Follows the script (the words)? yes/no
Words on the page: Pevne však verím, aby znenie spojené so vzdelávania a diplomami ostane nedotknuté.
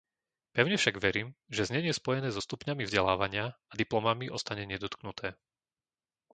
no